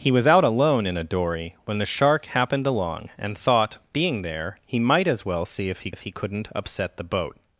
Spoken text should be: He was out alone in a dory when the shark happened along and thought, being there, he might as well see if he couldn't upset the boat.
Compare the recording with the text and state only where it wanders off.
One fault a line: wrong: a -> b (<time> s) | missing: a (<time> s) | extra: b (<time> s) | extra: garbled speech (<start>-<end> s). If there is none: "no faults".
extra: if he (5.9 s)